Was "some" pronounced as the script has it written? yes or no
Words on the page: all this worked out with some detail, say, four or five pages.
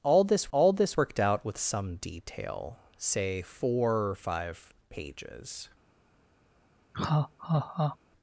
yes